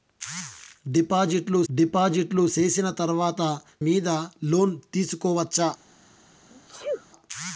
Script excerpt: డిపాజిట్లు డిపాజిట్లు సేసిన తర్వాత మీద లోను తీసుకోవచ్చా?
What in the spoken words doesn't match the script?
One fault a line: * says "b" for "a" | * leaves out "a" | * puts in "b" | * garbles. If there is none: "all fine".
all fine